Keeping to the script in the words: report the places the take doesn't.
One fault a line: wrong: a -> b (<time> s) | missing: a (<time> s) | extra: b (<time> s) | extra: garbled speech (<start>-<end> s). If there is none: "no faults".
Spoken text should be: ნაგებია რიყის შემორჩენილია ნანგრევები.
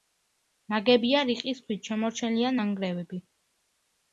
extra: ქვით (1.7 s)